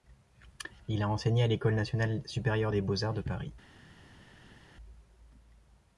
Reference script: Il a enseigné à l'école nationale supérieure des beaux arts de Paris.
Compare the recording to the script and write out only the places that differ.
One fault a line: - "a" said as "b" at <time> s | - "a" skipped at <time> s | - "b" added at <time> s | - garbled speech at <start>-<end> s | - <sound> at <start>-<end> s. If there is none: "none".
none